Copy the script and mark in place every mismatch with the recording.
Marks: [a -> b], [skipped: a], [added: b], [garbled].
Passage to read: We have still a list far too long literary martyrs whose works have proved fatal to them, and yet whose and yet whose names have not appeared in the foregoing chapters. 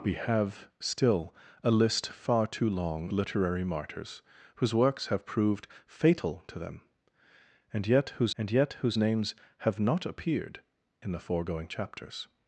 We have still a list far too long literary martyrs whose works have proved fatal to them, and yet whose and yet whose names have not appeared in the foregoing chapters.